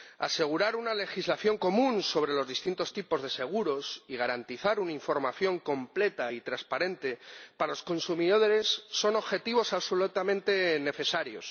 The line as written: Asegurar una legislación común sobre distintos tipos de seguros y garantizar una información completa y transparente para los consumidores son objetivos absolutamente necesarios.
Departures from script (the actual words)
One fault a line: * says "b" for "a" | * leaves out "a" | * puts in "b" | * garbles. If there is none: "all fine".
* puts in "los"